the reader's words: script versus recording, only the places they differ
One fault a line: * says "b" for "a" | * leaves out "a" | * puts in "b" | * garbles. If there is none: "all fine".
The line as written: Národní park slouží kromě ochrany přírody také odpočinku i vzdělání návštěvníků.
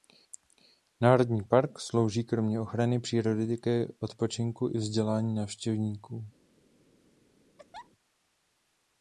all fine